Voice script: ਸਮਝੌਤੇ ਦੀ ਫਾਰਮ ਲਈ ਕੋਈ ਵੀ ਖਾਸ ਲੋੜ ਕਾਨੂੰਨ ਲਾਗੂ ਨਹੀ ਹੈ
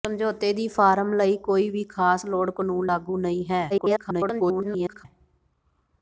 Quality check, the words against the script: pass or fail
fail